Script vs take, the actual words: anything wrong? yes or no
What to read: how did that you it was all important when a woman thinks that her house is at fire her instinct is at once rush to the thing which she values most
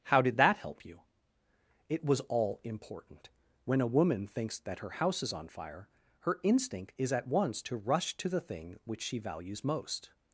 yes